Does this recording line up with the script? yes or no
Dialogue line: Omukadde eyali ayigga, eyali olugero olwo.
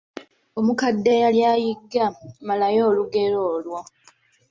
no